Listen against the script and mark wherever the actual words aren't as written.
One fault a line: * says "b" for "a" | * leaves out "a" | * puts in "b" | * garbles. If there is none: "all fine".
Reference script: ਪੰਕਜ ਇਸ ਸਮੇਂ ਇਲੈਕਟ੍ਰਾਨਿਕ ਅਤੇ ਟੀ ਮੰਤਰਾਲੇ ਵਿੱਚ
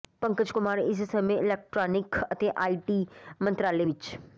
* puts in "ਕੁਮਾਰ"
* puts in "ਆਈ"